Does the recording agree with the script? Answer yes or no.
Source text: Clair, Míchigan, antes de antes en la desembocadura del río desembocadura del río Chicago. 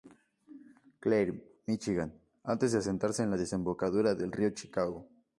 no